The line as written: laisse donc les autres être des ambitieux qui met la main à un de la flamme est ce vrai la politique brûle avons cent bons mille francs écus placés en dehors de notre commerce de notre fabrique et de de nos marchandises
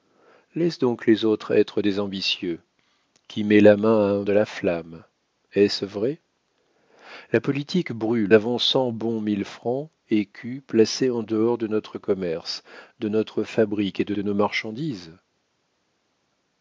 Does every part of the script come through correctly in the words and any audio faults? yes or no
yes